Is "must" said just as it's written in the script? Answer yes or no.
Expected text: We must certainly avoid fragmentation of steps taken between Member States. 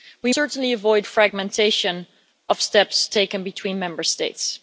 no